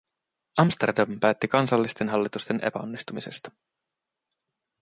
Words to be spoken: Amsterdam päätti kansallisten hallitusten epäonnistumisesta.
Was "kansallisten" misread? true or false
false